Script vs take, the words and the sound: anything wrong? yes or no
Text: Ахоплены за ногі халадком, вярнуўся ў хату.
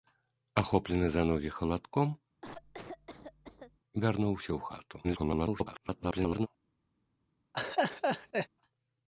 yes